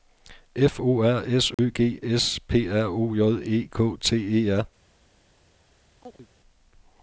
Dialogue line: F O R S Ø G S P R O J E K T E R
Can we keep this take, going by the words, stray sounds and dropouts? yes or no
no